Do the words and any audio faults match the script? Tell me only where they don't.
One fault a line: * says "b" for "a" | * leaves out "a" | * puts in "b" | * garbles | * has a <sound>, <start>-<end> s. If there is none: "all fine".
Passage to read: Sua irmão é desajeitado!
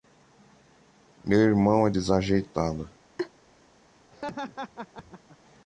* says "Meu" for "Sua"
* has a laugh, 3.2-3.3 s
* has a laugh, 4.1-5.4 s